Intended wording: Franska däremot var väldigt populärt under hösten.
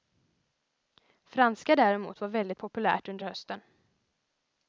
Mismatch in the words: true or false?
false